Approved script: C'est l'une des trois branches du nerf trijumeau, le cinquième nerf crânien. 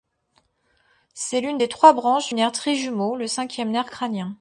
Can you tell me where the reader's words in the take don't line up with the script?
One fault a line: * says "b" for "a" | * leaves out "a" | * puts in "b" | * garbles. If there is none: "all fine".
* leaves out "du"